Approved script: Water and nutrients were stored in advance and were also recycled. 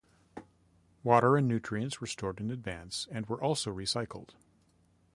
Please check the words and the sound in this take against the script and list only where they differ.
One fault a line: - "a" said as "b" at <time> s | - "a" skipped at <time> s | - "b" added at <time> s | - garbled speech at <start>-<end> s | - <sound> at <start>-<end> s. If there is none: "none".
none